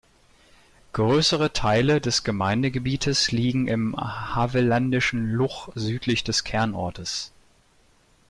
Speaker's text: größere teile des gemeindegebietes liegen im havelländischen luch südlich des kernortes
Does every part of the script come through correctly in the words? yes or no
yes